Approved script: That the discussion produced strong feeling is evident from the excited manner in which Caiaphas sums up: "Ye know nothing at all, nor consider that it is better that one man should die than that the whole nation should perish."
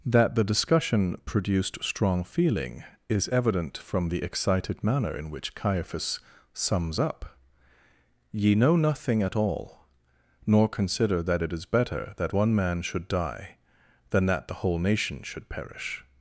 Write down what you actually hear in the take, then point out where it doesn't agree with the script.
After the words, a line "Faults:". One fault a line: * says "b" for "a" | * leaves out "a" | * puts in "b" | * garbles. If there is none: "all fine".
That the discussion produced strong feeling is evident from the excited manner in which Caiaphas sums up: "Ye know nothing at all, nor consider that it is better that one man should die than that the whole nation should perish."
Faults:
all fine